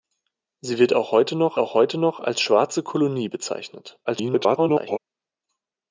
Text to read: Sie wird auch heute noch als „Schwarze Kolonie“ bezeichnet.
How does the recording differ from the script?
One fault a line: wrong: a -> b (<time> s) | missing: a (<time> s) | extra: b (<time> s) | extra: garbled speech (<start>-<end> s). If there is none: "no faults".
extra: auch heute noch (1.6 s)
extra: garbled speech (4.1-5.0 s)